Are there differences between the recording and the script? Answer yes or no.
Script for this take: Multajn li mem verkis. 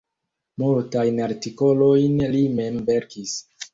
yes